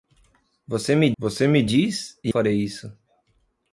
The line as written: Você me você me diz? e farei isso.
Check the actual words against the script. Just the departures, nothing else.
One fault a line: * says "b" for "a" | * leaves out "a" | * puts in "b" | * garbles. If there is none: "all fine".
all fine